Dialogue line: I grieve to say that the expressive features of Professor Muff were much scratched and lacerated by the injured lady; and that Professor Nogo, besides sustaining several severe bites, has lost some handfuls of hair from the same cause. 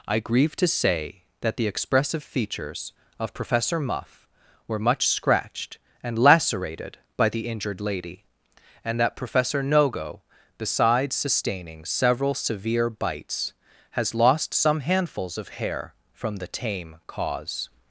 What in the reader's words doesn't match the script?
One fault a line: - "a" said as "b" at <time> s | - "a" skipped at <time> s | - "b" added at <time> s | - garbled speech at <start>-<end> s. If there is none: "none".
- "same" said as "tame" at 16.5 s